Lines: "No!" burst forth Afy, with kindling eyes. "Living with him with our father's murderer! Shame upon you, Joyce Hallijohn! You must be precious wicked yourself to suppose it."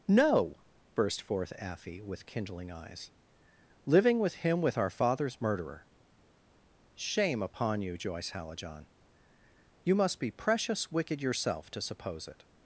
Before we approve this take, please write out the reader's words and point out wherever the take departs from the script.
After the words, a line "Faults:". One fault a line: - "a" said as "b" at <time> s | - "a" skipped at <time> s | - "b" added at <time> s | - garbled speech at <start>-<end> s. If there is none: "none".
"No!" burst forth Afy, with kindling eyes. "Living with him with our father's murderer! Shame upon you, Joyce Hallijohn! You must be precious wicked yourself to suppose it."
Faults:
none